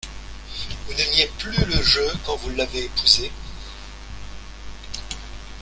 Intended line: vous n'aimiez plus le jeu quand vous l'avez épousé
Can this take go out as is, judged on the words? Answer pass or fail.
pass